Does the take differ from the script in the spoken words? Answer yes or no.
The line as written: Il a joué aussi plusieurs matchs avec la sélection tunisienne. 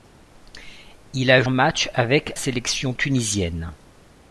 yes